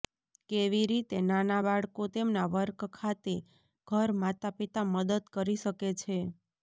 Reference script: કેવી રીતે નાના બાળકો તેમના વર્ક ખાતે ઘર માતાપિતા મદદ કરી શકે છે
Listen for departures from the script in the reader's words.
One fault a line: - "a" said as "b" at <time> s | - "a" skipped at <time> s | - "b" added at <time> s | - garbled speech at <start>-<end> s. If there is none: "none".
none